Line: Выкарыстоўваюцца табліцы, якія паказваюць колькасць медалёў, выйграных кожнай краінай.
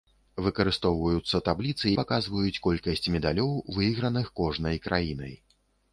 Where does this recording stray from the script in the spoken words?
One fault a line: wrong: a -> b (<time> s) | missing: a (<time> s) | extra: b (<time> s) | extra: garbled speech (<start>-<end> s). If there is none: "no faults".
missing: якія (1.9 s)